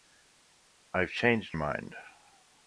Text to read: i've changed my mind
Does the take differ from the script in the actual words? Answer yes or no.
yes